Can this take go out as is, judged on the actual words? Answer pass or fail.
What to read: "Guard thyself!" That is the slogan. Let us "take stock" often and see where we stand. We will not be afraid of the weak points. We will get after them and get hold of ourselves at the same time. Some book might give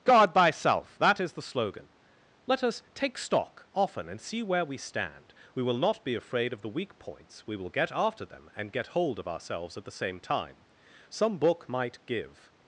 pass